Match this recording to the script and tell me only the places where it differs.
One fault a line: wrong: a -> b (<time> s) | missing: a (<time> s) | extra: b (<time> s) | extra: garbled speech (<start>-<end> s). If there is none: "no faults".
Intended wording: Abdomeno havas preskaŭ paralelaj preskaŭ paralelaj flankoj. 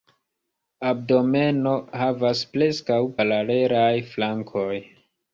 missing: preskaŭ paralelaj (3.9 s)